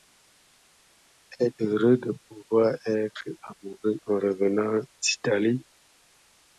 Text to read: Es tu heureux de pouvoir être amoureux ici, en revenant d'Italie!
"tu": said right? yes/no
no